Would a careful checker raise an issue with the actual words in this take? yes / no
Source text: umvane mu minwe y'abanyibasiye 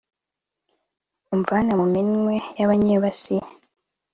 no